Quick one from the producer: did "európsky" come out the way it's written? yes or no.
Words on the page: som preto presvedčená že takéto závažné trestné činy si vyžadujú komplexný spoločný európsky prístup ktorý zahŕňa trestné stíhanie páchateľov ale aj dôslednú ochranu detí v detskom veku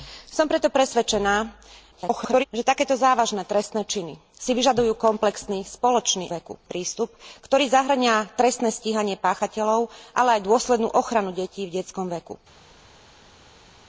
no